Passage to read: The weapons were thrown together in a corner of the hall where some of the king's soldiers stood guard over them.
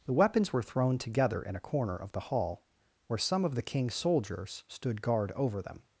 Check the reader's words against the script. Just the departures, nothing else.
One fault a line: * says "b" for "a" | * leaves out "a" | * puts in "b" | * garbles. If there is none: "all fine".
all fine